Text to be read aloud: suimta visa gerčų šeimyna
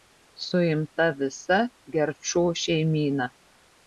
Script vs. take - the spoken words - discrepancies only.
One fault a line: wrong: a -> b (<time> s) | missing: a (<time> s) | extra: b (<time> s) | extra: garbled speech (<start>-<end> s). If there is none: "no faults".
no faults